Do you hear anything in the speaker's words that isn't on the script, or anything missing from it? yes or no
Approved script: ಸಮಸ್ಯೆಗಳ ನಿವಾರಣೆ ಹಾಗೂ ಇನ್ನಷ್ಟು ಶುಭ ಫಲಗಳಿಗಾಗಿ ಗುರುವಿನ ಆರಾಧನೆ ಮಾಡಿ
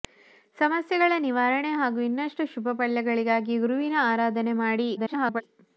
yes